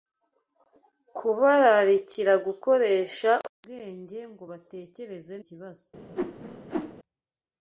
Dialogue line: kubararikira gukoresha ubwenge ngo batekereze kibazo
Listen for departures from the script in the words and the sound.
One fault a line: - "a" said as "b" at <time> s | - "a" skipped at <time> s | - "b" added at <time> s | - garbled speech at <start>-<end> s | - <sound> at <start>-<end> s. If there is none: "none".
- whoosh at 6.2-6.9 s